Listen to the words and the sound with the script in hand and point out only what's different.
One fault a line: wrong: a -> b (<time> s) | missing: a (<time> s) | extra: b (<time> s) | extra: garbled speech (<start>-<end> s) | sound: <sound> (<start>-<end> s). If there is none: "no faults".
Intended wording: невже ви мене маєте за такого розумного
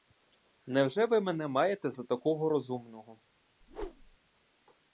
sound: whoosh (3.6-4.2 s)